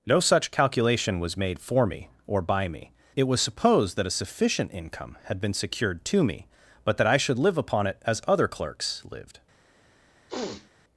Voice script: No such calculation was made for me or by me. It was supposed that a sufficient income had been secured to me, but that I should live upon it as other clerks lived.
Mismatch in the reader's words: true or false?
false